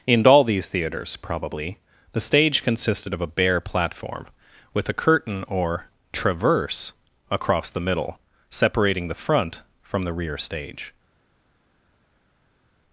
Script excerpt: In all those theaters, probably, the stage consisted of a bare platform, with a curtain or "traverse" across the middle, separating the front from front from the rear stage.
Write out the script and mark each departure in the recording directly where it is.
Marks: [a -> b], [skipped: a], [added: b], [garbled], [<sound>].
In all [those -> these] theaters, probably, the stage consisted of a bare platform, with a curtain or "traverse" across the middle, separating the front from [skipped: front from] the rear stage.